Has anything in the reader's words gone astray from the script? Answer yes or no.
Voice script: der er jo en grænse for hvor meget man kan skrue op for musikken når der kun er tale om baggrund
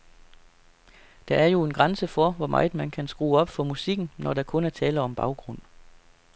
no